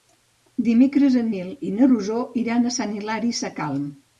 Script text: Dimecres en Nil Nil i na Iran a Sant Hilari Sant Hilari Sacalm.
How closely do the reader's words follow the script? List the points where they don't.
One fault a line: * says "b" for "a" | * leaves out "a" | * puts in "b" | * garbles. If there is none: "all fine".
* leaves out "Nil"
* puts in "Rosó"
* leaves out "Sant Hilari"